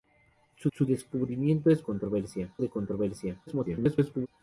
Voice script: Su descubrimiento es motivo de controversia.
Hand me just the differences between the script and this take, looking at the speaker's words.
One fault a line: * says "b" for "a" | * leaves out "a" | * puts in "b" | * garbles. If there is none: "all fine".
* puts in "su"
* says "controversia" for "motivo"
* garbles